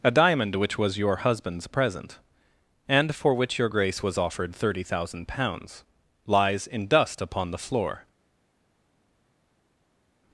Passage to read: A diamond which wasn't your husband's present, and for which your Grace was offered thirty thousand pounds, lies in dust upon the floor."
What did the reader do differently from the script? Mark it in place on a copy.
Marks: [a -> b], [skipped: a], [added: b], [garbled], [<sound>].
A diamond which [wasn't -> was] your husband's present, and for which your Grace was offered thirty thousand pounds, lies in dust upon the floor."